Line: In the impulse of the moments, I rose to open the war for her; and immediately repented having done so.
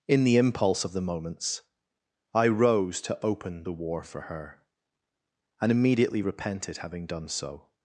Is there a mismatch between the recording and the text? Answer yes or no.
no